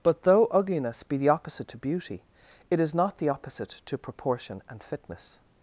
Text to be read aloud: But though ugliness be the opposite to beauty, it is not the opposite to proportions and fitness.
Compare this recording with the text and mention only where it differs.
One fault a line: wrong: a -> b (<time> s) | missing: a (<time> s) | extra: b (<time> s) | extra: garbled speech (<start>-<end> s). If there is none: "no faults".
wrong: proportions -> proportion (4.0 s)